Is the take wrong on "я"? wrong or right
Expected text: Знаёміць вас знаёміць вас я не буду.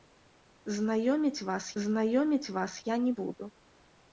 right